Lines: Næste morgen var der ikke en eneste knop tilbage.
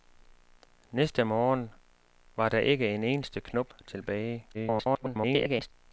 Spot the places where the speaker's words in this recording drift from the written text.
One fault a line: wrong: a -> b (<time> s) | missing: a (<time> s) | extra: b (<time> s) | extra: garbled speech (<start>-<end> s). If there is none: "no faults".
extra: garbled speech (4.5-5.7 s)